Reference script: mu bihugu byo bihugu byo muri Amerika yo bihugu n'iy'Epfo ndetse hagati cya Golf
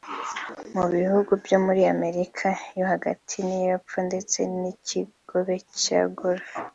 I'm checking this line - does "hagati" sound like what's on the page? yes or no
no